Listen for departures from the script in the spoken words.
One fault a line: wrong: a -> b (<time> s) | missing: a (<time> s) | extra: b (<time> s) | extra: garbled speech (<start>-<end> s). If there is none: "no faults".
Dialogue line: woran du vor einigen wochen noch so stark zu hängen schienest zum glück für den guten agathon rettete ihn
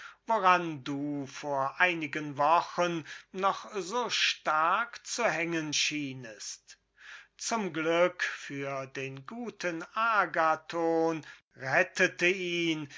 no faults